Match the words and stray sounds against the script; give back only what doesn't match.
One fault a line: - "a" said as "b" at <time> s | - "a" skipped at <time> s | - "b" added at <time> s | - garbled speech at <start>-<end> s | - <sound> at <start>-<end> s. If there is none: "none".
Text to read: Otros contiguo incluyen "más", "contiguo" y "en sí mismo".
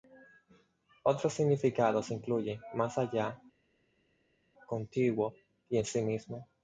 - "contiguo" said as "significados" at 1.3 s
- "allá" added at 3.0 s